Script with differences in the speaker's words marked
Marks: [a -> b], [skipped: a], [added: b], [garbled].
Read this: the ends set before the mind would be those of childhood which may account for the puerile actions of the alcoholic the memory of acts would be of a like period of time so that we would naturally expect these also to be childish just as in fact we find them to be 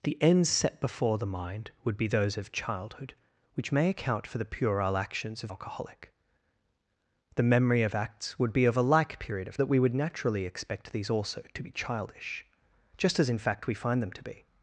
the ends set before the mind would be those of childhood which may account for the puerile actions of [skipped: the] alcoholic the memory of acts would be of a like period of [skipped: time so] that we would naturally expect these also to be childish just as in fact we find them to be